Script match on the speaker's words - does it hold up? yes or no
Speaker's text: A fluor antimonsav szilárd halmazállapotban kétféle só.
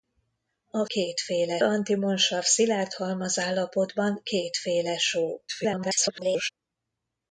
no